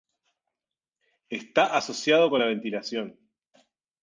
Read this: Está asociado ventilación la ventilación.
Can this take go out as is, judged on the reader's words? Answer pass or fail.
fail